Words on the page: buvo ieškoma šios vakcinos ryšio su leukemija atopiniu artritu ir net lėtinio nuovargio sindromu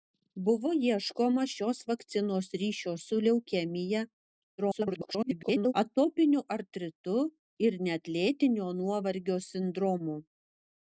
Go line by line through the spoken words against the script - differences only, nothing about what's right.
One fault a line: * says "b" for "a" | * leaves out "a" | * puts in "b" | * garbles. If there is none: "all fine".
* garbles